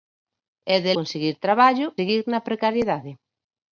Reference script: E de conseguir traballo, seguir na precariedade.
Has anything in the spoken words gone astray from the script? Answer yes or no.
no